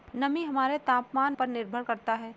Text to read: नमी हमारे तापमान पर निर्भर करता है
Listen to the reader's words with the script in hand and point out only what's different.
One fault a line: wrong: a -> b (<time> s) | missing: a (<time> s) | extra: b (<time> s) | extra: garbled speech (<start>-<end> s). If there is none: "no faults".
no faults